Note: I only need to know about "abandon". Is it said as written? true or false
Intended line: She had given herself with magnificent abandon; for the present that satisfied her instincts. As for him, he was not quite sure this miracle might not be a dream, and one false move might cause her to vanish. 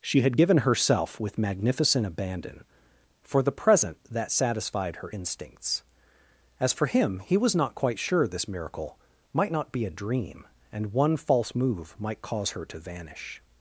true